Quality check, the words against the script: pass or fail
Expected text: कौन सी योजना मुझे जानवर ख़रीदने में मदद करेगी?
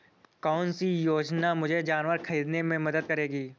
pass